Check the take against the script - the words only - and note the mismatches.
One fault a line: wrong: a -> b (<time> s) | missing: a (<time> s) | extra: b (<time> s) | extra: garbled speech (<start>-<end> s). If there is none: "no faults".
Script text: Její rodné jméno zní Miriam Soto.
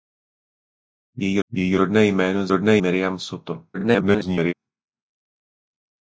extra: její (1.5 s)
wrong: zní -> rodné (2.5 s)
extra: garbled speech (3.7-4.5 s)